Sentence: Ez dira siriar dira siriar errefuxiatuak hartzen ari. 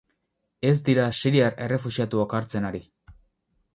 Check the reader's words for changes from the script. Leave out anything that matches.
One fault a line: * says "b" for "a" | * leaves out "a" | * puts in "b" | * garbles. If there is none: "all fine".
* leaves out "dira siriar"